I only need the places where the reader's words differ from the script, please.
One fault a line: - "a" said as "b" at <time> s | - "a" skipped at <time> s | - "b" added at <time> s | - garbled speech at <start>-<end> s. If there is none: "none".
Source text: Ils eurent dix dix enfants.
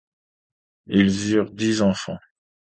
- "dix" skipped at 1.8 s